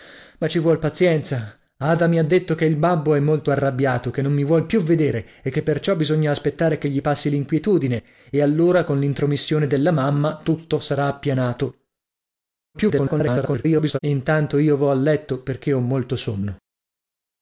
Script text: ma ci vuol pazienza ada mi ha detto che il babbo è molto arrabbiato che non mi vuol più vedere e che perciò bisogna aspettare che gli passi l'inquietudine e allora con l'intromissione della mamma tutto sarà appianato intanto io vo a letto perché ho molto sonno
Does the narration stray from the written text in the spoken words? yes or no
yes